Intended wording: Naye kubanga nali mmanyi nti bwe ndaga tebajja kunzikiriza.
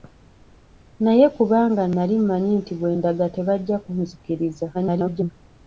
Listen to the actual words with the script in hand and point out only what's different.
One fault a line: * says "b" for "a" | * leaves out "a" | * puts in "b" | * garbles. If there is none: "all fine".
* garbles